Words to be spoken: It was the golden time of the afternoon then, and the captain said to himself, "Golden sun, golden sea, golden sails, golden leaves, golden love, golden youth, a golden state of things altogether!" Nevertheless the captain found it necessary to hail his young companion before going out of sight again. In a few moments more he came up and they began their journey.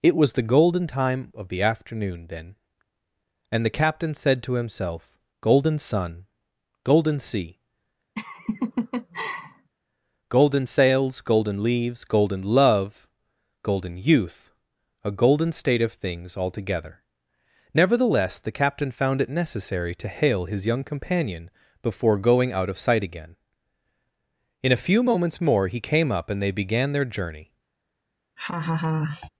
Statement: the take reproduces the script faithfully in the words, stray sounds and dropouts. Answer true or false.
false